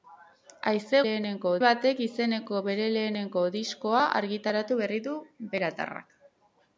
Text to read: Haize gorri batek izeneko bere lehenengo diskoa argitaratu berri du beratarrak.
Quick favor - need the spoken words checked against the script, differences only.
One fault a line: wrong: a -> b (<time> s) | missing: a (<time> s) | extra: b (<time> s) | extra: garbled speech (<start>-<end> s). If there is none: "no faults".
wrong: gorri -> lehenengo (1.1 s)